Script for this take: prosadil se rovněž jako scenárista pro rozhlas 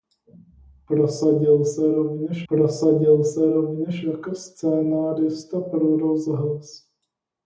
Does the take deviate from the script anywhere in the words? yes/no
yes